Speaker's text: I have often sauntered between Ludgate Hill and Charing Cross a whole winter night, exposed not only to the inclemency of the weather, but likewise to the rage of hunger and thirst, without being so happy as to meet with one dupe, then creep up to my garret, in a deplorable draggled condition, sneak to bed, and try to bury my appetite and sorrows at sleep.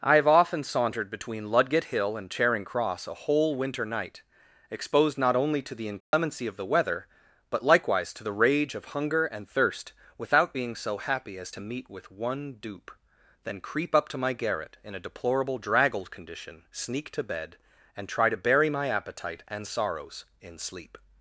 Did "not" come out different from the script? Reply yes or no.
no